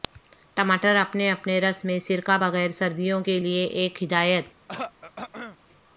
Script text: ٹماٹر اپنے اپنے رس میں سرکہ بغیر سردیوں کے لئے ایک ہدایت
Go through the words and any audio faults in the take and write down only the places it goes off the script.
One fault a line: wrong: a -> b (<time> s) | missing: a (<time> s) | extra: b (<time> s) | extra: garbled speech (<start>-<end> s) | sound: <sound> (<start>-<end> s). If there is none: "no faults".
sound: throat clearing (4.7-5.6 s)